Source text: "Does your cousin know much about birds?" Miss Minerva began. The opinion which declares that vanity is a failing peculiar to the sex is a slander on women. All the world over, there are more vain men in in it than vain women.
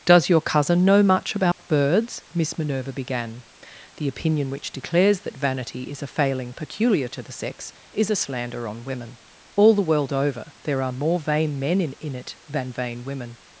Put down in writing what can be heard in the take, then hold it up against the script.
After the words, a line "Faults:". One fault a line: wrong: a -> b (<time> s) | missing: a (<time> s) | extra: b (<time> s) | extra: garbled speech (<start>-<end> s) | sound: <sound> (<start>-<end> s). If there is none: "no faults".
"Does your cousin know much about birds?" Miss Minerva began. The opinion which declares that vanity is a failing peculiar to the sex is a slander on women. All the world over, there are more vain men in in it than vain women.
Faults:
sound: dropout (1.5-1.6 s)